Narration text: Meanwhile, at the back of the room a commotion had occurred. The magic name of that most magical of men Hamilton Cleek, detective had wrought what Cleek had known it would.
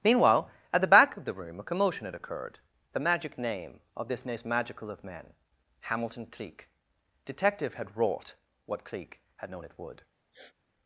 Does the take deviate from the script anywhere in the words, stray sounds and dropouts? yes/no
yes